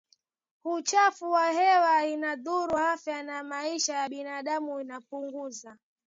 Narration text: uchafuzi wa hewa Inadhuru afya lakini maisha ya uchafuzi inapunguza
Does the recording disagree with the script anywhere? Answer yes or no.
yes